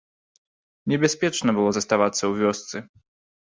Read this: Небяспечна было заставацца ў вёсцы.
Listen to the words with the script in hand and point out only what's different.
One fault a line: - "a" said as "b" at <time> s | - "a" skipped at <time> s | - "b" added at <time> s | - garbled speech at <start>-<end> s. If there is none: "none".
none